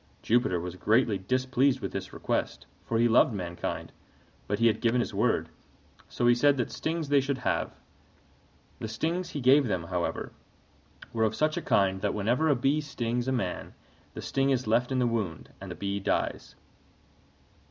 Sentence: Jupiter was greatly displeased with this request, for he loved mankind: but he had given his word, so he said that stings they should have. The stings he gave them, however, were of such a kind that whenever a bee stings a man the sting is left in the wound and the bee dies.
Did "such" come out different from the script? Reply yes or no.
no